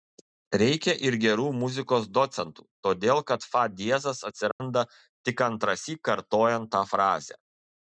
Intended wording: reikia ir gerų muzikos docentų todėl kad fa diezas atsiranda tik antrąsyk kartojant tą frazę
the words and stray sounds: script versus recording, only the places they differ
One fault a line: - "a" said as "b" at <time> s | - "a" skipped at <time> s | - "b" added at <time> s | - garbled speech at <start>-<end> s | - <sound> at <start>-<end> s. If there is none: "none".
- dropout at 4.5-4.6 s